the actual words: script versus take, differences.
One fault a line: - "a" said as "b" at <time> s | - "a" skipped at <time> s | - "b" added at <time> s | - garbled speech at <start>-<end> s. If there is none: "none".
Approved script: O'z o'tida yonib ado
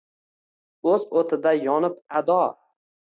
none